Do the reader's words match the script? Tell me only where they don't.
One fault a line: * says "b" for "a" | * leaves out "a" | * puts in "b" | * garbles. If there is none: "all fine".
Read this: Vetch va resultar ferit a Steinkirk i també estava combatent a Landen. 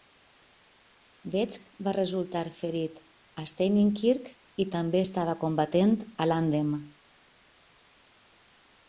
all fine